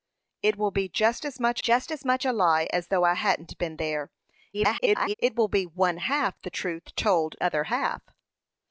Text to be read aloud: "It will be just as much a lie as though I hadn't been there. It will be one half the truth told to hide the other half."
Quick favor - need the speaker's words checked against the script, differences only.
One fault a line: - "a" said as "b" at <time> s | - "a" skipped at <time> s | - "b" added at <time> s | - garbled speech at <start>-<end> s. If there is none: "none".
- "just as much" added at 1.6 s
- garbled speech at 4.5-5.1 s
- "to hide the" skipped at 7.4 s